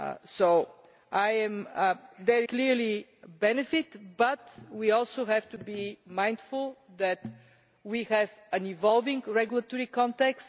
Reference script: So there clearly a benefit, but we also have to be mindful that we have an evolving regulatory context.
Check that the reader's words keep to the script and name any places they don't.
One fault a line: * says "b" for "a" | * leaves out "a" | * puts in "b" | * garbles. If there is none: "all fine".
all fine